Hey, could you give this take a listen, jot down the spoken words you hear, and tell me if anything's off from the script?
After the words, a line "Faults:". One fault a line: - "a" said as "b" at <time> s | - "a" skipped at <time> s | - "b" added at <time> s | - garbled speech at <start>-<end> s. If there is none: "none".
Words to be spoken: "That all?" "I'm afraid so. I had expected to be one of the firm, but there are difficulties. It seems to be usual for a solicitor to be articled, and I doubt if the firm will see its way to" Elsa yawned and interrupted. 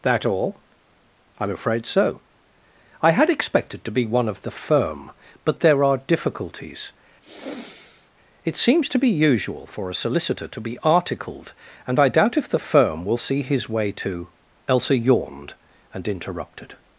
"That all?" "I'm afraid so. I had expected to be one of the firm, but there are difficulties. It seems to be usual for a solicitor to be articled, and I doubt if the firm will see his way to" Elsa yawned and interrupted.
Faults:
- "its" said as "his" at 13.4 s